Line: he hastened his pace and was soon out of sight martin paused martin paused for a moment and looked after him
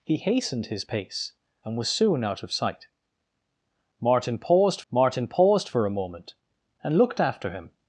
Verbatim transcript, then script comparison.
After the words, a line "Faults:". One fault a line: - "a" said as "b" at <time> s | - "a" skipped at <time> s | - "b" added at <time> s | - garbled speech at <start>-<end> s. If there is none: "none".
he hastened his pace and was soon out of sight martin paused martin paused for a moment and looked after him
Faults:
none